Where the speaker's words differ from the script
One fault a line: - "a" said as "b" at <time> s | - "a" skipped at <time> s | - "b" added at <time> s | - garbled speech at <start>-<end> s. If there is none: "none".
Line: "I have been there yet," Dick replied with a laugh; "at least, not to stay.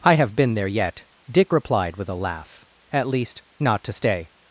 none